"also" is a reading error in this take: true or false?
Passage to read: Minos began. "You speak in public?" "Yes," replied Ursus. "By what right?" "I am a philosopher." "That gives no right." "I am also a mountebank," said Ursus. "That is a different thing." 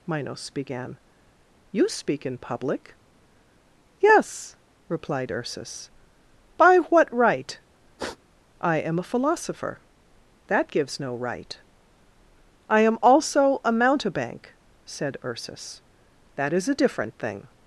false